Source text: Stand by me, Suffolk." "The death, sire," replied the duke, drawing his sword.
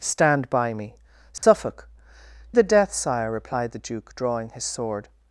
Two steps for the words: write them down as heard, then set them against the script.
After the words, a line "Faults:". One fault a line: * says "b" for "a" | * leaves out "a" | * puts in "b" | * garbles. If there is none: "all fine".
Stand by me, Suffolk." "The death, sire," replied the duke, drawing his sword.
Faults:
all fine